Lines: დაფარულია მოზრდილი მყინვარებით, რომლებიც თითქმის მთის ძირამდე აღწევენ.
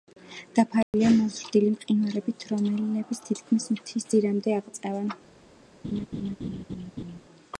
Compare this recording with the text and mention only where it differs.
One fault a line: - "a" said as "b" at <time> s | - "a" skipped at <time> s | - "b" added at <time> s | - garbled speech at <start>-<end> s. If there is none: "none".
none